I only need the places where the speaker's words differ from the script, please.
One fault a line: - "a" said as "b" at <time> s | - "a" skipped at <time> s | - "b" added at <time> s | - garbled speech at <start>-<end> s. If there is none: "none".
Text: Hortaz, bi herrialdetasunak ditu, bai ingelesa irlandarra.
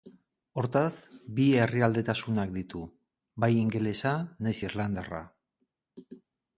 - "nahiz" added at 4.5 s